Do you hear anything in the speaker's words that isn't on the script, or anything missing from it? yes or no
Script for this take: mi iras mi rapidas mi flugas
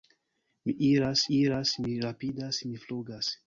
yes